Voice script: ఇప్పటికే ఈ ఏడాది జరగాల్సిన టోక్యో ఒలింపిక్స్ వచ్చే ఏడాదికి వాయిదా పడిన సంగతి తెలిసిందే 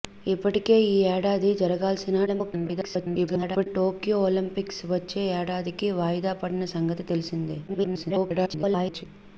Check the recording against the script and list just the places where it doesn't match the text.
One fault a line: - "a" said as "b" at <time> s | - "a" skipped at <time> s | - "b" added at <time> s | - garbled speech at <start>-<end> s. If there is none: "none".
- garbled speech at 2.3-3.7 s
- garbled speech at 7.7-9.0 s